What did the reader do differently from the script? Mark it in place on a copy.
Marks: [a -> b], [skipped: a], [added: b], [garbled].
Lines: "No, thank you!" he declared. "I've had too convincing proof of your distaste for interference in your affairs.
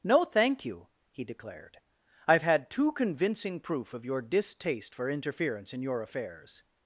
"No, thank you!" he declared. "I've had too convincing proof of your distaste for interference in your affairs.